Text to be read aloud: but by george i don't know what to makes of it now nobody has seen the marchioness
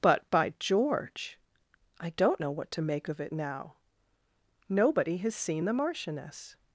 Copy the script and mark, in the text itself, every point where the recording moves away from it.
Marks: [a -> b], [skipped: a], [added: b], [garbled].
but by george i don't know what to [makes -> make] of it now nobody has seen the marchioness